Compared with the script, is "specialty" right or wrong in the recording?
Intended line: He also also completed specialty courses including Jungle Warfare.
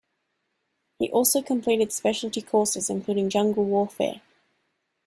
right